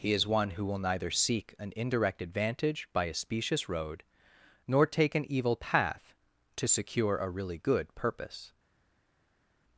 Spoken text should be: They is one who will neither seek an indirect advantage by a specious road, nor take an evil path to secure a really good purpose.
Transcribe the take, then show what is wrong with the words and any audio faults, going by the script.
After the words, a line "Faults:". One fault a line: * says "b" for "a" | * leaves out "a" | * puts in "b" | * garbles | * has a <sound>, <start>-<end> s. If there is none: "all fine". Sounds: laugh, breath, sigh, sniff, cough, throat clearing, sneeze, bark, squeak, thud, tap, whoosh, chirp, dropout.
He is one who will neither seek an indirect advantage by a specious road, nor take an evil path to secure a really good purpose.
Faults:
* says "He" for "They"